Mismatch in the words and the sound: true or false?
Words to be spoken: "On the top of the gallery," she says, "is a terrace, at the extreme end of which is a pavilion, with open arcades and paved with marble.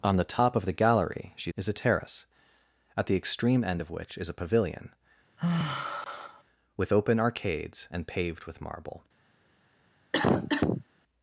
true